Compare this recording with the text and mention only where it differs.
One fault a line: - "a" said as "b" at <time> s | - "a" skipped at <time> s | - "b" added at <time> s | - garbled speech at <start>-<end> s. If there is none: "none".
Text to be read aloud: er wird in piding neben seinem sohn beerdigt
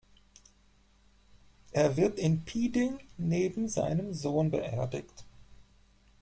none